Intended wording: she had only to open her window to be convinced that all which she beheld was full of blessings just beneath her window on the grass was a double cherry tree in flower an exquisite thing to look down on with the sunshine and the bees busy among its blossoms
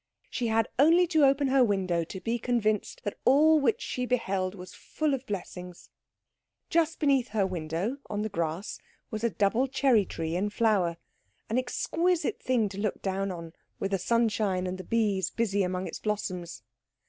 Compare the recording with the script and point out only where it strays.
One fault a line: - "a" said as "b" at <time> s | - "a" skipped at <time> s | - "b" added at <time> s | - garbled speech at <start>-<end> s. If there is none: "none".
none